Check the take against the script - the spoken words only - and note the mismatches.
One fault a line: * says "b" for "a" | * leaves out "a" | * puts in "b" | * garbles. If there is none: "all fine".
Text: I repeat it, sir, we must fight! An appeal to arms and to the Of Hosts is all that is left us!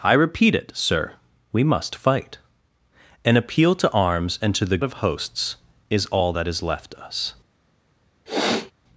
all fine